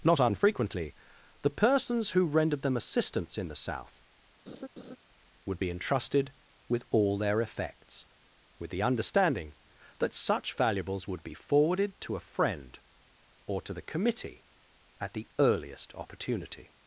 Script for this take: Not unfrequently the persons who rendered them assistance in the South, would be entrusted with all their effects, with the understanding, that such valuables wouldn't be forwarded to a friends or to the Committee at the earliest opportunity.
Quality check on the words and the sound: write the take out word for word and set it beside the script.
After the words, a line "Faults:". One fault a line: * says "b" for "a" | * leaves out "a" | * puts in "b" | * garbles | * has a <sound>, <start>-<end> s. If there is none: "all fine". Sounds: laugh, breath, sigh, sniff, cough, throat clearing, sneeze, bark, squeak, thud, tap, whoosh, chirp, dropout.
Not unfrequently the persons who rendered them assistance in the South, would be entrusted with all their effects, with the understanding, that such valuables would be forwarded to a friend or to the Committee at the earliest opportunity.
Faults:
* has a laugh, 4.5-5.0 s
* says "would" for "wouldn't"
* says "friend" for "friends"